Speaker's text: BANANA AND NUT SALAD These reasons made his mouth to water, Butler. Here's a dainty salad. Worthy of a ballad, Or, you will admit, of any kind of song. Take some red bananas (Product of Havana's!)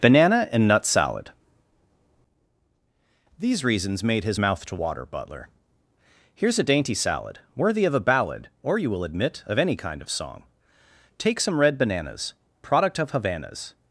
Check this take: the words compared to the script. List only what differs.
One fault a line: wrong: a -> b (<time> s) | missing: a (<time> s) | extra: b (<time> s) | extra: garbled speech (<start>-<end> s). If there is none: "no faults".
no faults